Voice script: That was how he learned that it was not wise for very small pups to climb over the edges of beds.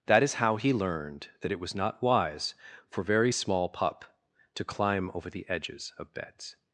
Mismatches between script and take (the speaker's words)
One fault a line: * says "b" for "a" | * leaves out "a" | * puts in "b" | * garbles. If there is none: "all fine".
* says "is" for "was"
* says "pup" for "pups"